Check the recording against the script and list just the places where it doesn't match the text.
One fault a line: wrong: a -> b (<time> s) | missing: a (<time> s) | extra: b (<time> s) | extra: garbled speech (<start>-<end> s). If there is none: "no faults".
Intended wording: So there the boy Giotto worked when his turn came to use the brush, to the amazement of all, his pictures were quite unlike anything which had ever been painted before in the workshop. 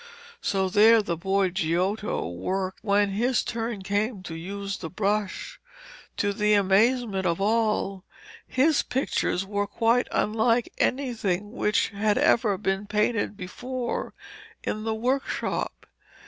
no faults